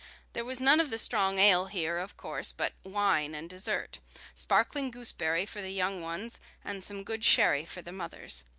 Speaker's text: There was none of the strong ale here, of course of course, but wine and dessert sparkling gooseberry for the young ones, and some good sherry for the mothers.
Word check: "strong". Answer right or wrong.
right